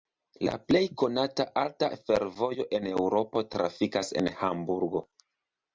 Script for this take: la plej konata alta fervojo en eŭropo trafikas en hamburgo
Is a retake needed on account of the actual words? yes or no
no